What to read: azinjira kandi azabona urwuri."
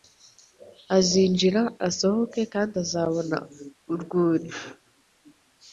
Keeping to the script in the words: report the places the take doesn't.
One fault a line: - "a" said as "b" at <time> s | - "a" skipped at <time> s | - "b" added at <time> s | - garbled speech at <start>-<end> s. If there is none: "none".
- "asohoke" added at 1.9 s